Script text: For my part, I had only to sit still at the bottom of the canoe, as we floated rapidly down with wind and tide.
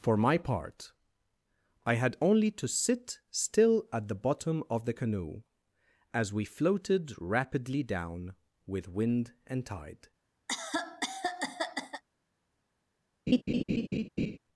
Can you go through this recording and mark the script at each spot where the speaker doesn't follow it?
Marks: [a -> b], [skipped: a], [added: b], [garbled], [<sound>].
For my part, I had only to sit still at the bottom of the canoe, as we floated rapidly down with wind and tide. [cough] [laugh]